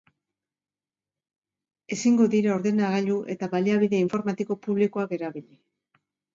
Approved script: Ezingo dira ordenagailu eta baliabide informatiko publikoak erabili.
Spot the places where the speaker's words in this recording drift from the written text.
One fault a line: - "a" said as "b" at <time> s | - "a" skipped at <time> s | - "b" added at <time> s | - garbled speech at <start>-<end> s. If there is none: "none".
none